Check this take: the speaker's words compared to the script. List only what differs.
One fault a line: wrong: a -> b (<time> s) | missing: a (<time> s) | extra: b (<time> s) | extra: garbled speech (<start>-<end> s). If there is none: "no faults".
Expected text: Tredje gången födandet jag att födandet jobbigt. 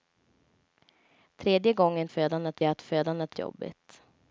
no faults